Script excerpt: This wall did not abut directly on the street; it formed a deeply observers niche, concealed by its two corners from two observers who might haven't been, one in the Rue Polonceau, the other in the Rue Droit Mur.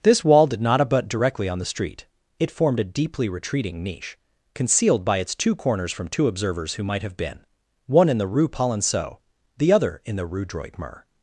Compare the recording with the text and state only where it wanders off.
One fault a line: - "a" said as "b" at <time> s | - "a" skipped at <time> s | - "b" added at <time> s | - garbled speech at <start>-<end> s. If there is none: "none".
- "observers" said as "retreating" at 3.3 s
- "haven't" said as "have" at 7.0 s